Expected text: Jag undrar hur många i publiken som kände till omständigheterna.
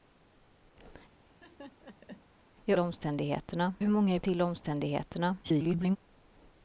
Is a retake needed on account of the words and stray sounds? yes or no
yes